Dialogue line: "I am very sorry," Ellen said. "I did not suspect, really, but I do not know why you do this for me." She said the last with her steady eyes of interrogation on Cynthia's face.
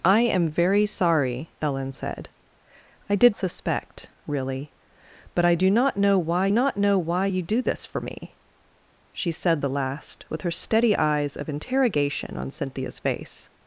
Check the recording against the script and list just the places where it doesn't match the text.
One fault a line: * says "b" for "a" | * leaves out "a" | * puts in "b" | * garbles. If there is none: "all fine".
* leaves out "not"
* puts in "not know why"